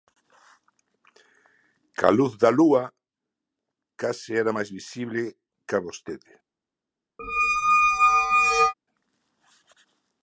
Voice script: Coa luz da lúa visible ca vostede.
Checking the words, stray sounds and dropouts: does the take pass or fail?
fail